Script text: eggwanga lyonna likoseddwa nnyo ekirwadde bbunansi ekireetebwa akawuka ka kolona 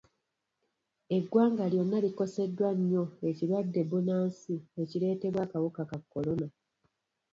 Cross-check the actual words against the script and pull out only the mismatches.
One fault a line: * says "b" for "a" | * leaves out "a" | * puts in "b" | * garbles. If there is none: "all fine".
all fine